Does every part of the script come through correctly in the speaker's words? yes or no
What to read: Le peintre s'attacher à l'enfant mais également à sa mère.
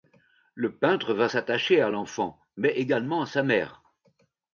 no